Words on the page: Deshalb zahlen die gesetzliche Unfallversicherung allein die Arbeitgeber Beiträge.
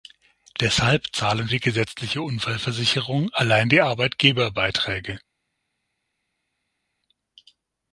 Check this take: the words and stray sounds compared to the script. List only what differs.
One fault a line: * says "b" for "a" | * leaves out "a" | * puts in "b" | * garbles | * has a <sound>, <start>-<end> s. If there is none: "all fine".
all fine